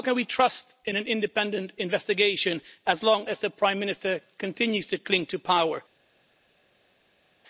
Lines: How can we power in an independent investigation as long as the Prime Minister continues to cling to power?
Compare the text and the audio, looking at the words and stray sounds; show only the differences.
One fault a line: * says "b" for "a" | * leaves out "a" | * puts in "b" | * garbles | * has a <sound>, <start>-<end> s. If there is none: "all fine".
* says "trust" for "power"